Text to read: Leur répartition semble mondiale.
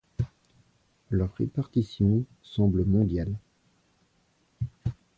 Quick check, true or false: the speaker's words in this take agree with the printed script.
true